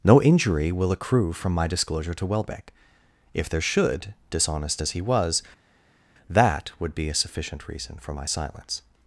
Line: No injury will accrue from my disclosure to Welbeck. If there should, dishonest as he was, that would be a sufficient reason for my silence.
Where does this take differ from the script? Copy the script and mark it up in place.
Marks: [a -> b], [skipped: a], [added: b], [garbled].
No injury will accrue from my disclosure to Welbeck. If there should, dishonest as he was, that would be a sufficient reason for my silence.